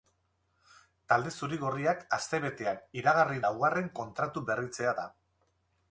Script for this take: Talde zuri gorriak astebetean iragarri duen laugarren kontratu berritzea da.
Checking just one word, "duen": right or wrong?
wrong